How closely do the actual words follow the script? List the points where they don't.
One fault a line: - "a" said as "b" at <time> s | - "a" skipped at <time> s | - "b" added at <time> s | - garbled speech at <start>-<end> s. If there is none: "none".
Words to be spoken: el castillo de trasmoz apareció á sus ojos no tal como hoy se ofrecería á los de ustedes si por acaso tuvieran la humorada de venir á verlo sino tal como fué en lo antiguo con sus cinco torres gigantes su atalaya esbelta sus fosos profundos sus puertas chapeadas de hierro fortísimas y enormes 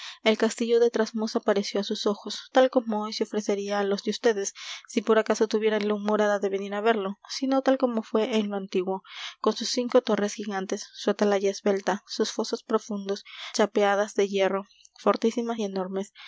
- "no" skipped at 2.5 s
- "sus puertas" skipped at 13.2 s